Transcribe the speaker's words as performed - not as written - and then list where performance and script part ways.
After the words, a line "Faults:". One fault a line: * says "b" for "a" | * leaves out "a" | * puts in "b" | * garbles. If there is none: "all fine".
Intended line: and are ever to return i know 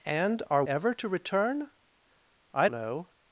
and are ever to return i know
Faults:
all fine